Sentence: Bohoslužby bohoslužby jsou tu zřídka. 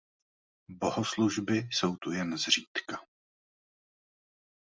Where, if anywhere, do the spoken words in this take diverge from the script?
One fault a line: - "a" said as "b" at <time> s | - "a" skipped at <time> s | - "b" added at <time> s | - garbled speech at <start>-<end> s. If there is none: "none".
- "bohoslužby" skipped at 1.6 s
- "jen" added at 2.1 s